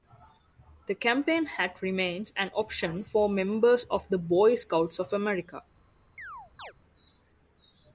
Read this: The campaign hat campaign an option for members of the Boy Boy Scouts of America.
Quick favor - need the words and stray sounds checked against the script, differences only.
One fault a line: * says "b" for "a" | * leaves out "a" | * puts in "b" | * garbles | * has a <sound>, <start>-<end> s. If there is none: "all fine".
* says "remains" for "campaign"
* leaves out "Boy"
* has a chirp, 6.2-6.7 s